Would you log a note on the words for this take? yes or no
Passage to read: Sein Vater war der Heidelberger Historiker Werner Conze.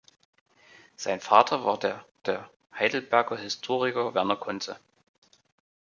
yes